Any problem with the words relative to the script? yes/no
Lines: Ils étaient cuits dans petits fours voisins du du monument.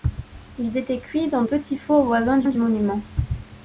no